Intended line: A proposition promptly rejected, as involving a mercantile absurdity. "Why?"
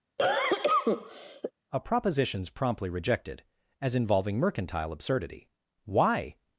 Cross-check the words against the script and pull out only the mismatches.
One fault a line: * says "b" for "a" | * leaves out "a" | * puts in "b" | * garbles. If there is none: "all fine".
* says "propositions" for "proposition"
* leaves out "a"